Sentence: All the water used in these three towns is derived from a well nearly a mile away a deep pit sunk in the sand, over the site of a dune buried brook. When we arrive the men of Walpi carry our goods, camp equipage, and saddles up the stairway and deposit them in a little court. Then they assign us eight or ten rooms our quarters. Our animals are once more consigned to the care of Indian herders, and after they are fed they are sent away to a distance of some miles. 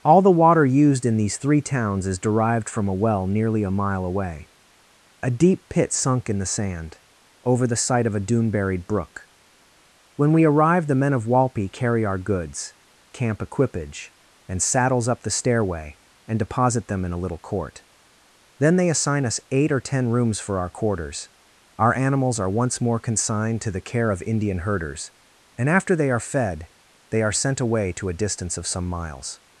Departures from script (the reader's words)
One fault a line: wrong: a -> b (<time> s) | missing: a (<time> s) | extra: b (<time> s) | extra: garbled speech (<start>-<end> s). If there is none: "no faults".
extra: for (20.4 s)